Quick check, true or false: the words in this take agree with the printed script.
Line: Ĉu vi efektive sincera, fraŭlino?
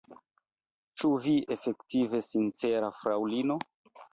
true